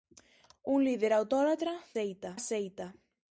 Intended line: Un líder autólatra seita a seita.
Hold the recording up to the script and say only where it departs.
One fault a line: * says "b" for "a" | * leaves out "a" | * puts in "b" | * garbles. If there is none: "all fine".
all fine